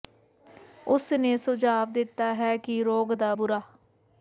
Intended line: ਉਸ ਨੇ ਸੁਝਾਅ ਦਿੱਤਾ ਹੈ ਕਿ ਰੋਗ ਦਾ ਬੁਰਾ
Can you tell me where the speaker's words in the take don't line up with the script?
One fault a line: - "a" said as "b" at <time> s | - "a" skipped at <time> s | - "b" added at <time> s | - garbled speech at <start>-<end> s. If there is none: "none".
none